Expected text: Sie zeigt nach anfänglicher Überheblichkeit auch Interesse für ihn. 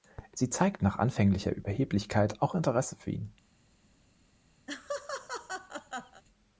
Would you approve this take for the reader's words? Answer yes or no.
yes